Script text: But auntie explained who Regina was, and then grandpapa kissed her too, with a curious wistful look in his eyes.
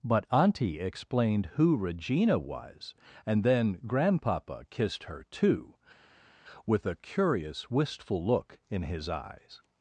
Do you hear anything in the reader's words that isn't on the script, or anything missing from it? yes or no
no